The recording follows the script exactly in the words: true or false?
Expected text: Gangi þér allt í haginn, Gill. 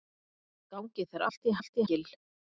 false